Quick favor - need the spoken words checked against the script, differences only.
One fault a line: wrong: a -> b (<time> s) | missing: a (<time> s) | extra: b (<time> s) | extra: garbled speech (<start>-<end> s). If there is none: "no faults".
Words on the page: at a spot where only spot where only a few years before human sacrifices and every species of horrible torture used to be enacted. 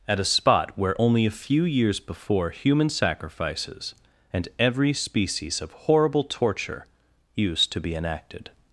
missing: spot where only (1.2 s)